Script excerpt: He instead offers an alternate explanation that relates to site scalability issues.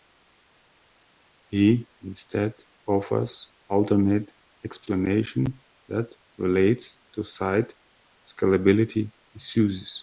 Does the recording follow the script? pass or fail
fail